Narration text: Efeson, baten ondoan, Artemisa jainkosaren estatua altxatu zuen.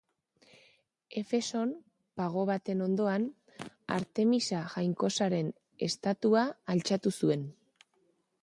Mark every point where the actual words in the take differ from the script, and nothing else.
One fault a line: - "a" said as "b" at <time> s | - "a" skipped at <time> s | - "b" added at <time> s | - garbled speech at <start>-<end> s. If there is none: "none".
- "pago" added at 2.2 s